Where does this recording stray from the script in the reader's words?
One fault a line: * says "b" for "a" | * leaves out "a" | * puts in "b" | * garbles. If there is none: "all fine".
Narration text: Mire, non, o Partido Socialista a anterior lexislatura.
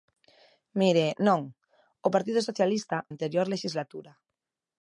all fine